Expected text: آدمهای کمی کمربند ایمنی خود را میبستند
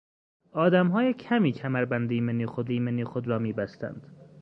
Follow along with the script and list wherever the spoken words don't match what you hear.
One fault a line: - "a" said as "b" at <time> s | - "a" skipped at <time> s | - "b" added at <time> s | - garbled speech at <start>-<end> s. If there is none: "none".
- "ایمنی خود" added at 2.7 s